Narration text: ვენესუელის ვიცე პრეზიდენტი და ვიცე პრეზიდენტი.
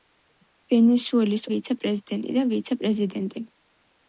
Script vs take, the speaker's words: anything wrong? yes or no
no